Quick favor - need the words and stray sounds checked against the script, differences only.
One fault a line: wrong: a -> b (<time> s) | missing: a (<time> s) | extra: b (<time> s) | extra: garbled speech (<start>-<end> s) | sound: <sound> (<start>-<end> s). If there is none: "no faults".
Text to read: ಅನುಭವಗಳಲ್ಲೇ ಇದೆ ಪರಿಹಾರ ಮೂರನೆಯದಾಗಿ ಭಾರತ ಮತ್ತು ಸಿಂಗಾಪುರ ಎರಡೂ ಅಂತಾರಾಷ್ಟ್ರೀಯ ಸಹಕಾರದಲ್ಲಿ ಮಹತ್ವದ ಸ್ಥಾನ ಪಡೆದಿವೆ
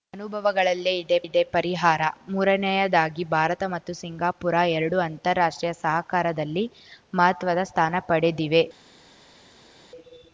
extra: ಇದೆ (1.2 s)